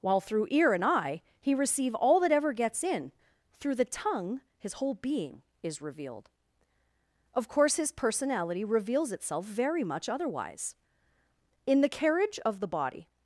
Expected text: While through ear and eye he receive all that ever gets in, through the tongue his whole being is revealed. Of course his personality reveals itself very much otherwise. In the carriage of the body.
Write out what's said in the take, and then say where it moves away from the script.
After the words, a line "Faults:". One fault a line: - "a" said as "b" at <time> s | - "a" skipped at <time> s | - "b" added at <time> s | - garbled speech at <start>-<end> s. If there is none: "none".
While through ear and eye he receive all that ever gets in, through the tongue his whole being is revealed. Of course his personality reveals itself very much otherwise. In the carriage of the body.
Faults:
none